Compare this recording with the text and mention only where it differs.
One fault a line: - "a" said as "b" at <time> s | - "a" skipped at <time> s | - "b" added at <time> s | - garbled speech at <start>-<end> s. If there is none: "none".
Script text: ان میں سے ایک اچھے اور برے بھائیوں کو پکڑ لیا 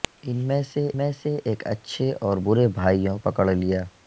- "میں سے" added at 1.0 s
- "کو" skipped at 3.2 s